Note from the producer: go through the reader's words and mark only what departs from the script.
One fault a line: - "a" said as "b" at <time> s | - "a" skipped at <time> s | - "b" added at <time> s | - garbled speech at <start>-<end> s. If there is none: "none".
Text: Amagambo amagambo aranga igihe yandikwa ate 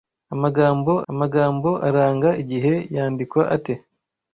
none